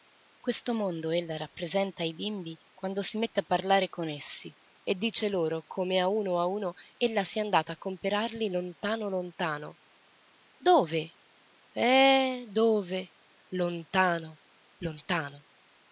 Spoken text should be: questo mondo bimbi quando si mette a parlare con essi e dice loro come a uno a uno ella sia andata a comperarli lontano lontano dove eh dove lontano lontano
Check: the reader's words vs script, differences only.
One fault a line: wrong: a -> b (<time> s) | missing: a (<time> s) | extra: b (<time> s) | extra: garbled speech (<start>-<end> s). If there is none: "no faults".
extra: ella rappresenta ai (1.1 s)